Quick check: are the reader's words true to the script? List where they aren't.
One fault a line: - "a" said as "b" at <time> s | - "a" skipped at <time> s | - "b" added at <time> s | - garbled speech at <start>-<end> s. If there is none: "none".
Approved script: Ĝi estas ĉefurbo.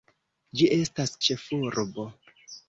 none